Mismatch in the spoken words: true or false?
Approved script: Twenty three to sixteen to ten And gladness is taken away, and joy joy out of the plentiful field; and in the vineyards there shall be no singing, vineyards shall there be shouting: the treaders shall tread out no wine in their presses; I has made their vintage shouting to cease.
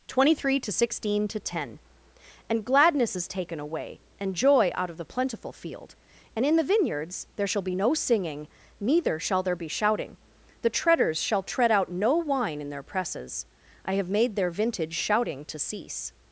true